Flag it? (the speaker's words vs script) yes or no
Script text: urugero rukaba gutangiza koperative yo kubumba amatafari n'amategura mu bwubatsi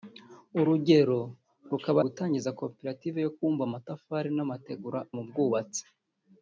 no